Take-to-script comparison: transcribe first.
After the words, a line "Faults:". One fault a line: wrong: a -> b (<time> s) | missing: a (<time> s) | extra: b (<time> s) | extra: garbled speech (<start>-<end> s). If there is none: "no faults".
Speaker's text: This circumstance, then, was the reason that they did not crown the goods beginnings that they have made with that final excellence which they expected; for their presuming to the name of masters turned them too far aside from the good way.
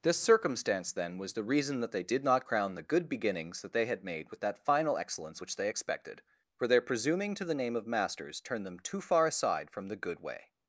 This circumstance, then, was the reason that they did not crown the good beginnings that they had made with that final excellence which they expected; for their presuming to the name of masters turned them too far aside from the good way.
Faults:
wrong: goods -> good (2.8 s)
wrong: have -> had (3.8 s)